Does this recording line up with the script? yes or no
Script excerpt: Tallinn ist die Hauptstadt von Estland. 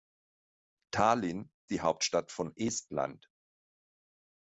no